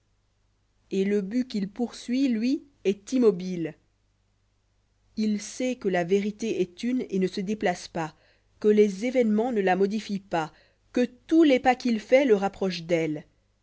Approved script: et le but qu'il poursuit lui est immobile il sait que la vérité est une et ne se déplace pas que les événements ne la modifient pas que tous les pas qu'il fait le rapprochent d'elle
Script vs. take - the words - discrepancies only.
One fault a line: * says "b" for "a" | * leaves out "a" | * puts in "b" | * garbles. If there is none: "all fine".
all fine